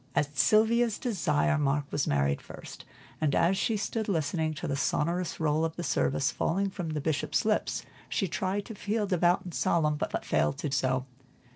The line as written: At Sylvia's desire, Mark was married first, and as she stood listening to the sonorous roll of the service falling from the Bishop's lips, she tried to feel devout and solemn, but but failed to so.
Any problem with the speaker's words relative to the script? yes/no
no